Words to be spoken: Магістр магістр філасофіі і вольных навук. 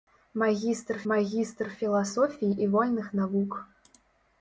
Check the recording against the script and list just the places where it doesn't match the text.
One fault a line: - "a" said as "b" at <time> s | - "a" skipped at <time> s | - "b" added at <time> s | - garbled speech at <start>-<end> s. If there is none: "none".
none